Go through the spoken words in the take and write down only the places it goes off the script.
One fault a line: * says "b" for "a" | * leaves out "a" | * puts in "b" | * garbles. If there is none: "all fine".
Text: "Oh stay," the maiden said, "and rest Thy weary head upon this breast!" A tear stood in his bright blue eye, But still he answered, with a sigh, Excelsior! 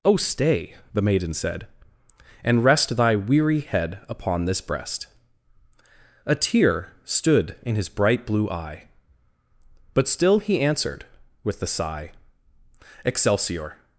* says "the" for "a"